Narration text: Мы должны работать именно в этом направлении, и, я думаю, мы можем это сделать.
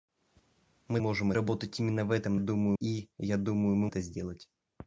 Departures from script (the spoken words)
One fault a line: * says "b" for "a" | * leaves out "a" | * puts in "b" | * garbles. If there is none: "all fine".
* says "можем" for "должны"
* says "думаю" for "направлении"
* leaves out "можем"